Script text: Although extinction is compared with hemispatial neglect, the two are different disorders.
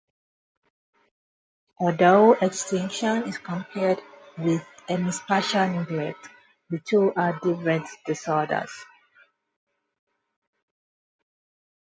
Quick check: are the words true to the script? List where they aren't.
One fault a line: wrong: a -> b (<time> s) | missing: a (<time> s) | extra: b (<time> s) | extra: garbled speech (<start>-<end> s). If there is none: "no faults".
no faults